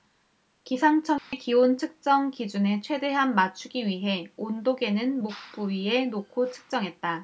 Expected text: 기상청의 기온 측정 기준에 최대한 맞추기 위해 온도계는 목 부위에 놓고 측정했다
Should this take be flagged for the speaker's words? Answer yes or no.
no